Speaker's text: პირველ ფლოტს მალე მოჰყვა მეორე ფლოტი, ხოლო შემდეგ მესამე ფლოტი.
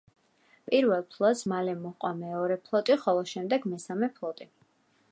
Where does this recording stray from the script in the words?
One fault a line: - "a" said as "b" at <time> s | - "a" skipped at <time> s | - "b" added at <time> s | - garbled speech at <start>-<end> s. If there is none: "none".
none